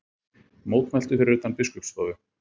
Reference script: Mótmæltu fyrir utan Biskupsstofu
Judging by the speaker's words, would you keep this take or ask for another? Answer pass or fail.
pass